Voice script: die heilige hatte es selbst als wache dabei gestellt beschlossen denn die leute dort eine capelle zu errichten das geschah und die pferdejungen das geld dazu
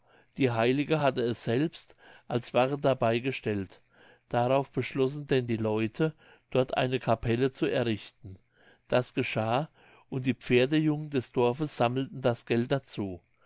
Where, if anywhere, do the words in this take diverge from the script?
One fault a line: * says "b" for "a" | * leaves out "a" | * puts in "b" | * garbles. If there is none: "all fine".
* puts in "darauf"
* puts in "des dorfes sammelten"